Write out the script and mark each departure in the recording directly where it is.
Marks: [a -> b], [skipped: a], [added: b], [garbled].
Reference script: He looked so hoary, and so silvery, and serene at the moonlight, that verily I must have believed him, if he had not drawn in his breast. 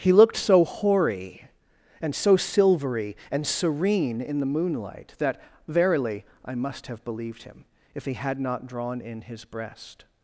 He looked so hoary, and so silvery, and serene [at -> in] the moonlight, that verily I must have believed him, if he had not drawn in his breast.